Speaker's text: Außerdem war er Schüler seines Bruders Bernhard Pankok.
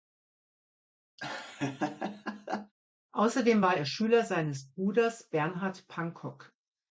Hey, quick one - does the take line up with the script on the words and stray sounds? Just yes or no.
no